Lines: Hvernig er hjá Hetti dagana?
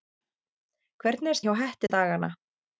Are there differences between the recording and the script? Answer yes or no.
no